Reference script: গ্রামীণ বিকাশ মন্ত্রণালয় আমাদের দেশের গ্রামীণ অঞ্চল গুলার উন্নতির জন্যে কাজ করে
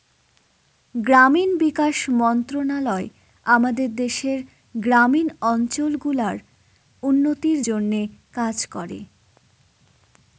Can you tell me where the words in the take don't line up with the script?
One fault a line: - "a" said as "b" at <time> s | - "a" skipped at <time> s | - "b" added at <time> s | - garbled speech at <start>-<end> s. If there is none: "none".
none